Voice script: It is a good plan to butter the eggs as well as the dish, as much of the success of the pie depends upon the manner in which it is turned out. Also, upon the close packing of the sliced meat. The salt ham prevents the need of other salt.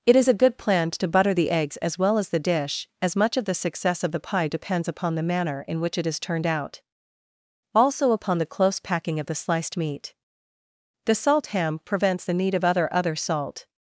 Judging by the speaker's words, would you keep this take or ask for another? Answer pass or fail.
fail